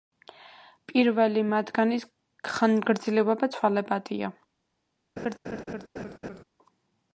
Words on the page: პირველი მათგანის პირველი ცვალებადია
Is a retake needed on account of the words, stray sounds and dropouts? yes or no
yes